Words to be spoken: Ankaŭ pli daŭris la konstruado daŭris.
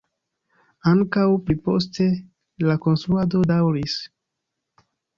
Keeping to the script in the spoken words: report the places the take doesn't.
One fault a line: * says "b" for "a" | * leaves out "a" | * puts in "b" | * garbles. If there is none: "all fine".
* says "poste" for "daŭris"